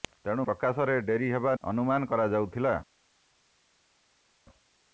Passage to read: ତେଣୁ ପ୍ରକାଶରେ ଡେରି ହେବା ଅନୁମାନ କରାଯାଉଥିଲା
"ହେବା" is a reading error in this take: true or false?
false